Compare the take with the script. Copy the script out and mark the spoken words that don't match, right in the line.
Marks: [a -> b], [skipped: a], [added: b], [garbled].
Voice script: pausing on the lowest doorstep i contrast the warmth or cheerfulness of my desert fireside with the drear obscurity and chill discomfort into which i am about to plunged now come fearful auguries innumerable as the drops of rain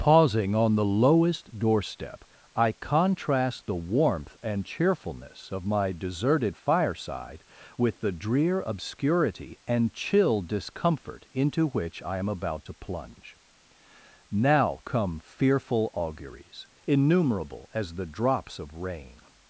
pausing on the lowest doorstep i contrast the warmth [or -> and] cheerfulness of my [desert -> deserted] fireside with the drear obscurity and chill discomfort into which i am about to [plunged -> plunge] now come fearful auguries innumerable as the drops of rain